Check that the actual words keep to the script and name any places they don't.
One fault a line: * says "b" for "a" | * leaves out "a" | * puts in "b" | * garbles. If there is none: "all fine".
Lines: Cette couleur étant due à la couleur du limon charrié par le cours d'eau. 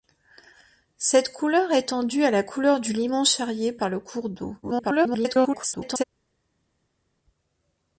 * garbles